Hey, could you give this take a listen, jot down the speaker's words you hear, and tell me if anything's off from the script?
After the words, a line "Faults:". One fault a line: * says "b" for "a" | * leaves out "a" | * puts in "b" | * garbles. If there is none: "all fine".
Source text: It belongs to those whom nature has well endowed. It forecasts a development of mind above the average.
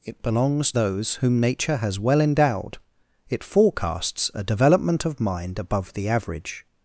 It belongs those whom nature has well endowed. It forecasts a development of mind above the average.
Faults:
* leaves out "to"